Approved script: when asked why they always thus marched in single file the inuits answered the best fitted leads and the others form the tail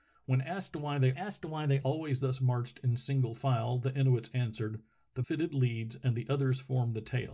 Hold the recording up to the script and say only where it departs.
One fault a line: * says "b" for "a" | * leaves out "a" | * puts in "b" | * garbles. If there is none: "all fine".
* puts in "asked why they"
* leaves out "best"